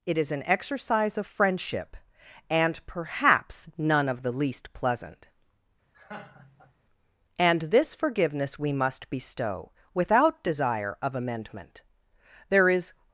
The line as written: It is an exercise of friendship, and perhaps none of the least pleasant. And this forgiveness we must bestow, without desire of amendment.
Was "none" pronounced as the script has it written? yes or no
yes